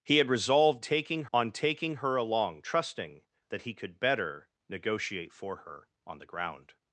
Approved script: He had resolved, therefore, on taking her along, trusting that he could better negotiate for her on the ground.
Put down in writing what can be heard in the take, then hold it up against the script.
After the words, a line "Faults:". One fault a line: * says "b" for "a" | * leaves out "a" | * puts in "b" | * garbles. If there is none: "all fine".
He had resolved, taking, on taking her along, trusting that he could better negotiate for her on the ground.
Faults:
* says "taking" for "therefore"